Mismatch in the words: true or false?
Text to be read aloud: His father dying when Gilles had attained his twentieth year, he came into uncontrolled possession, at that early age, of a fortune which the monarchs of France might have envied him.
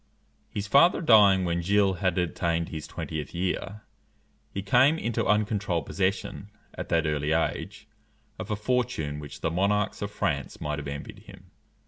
false